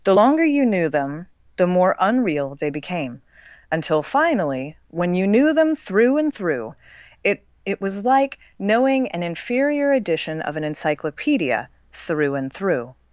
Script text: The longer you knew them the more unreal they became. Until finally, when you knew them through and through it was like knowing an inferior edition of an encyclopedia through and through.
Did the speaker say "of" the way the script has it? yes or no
yes